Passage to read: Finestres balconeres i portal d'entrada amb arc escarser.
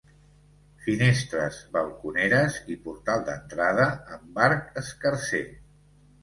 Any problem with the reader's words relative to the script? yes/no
no